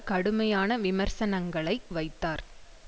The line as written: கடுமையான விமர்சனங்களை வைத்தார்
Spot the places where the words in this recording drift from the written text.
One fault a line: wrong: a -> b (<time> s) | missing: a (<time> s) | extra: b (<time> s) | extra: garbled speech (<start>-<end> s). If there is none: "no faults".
no faults